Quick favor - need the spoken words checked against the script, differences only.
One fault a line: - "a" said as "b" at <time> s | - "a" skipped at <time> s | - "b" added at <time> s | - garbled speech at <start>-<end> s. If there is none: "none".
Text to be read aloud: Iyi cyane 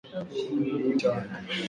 none